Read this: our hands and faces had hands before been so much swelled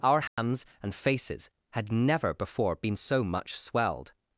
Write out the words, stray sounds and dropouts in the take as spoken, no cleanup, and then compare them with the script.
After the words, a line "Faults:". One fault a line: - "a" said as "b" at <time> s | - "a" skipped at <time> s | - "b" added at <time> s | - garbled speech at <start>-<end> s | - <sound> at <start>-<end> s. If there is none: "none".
our hands and faces had never before been so much swelled
Faults:
- dropout at 0.3-0.4 s
- "hands" said as "never" at 1.9 s